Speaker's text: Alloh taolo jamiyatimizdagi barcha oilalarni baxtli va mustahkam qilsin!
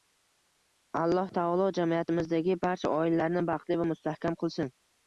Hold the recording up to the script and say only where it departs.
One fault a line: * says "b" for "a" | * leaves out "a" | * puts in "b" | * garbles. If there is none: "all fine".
all fine